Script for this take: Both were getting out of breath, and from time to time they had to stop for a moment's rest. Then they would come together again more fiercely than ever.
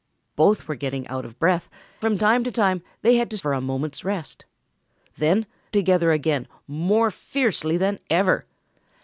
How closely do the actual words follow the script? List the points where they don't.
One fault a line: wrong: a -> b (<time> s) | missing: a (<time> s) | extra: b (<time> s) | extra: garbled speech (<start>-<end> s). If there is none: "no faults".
missing: and (1.7 s)
missing: stop (3.4 s)
missing: they would come (5.5 s)